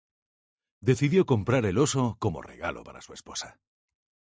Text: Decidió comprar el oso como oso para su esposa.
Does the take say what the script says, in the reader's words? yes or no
no